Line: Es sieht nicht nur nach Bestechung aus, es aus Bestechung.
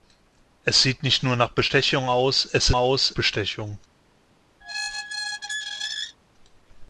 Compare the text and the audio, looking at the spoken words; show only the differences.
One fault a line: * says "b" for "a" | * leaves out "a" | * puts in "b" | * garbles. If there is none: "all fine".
all fine